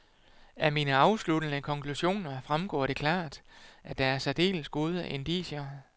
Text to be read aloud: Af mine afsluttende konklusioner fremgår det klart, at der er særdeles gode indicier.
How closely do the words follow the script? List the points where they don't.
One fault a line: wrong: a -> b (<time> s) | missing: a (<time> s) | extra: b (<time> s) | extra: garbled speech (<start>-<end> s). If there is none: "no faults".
no faults